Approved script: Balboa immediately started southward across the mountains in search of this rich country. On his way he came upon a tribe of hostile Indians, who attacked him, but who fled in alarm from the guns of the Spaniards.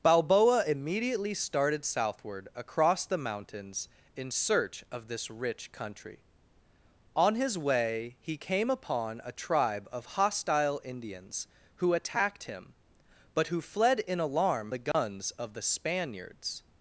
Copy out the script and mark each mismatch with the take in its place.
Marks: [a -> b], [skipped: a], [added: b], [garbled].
Balboa immediately started southward across the mountains in search of this rich country. On his way he came upon a tribe of hostile Indians, who attacked him, but who fled in alarm [skipped: from] the guns of the Spaniards.